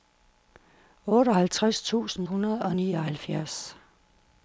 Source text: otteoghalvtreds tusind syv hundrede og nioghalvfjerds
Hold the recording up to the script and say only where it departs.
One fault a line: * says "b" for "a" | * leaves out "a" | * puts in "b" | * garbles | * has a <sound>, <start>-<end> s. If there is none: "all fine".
* leaves out "syv"